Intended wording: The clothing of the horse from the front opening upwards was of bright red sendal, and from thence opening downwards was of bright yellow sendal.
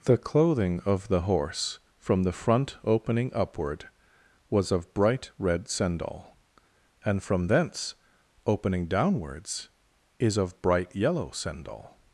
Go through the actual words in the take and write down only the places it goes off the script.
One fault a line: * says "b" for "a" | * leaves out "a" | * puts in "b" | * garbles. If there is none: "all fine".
* says "upward" for "upwards"
* says "is" for "was"